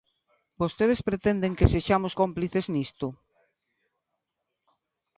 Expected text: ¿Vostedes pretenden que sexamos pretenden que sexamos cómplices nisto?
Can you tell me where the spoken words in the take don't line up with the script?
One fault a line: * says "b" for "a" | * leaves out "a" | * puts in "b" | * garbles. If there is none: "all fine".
* leaves out "pretenden que sexamos"